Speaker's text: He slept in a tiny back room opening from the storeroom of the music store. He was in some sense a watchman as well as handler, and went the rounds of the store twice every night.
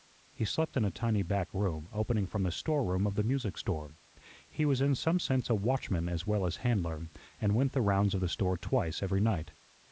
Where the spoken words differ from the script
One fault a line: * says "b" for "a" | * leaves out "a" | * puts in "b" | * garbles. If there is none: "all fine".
all fine